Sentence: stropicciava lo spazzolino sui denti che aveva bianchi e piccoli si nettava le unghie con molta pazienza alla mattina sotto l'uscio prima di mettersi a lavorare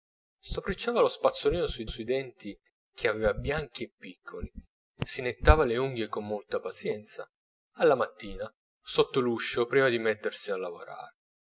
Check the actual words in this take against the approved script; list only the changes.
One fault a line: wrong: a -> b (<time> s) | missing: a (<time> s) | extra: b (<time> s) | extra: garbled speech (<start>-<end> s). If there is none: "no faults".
extra: sui (1.9 s)